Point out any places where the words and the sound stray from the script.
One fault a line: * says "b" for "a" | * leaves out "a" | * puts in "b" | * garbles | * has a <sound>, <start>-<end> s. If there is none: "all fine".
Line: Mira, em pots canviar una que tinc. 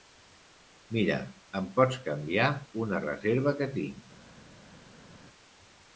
* puts in "reserva"